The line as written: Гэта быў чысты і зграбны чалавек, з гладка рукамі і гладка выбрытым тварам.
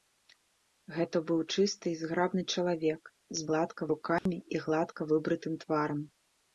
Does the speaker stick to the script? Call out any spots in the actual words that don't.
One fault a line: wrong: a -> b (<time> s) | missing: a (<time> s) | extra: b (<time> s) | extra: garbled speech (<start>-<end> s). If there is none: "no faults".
no faults